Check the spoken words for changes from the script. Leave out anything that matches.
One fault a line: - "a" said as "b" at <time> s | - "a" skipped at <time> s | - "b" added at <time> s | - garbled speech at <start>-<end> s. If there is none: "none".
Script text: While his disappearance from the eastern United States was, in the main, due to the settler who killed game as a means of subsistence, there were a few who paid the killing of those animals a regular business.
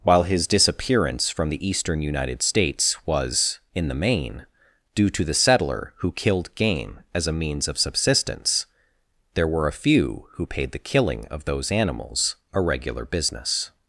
none